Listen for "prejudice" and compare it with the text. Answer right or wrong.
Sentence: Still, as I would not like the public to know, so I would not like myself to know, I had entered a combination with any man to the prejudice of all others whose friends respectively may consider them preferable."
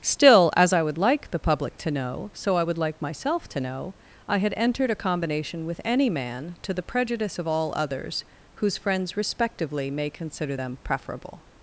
right